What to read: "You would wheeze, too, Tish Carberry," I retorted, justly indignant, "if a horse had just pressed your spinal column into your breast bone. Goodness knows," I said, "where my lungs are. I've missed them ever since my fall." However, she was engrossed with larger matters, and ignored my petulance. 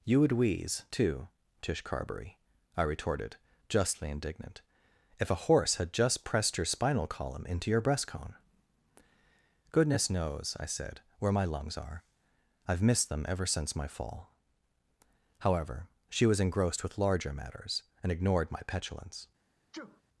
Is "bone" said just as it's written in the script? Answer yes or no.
no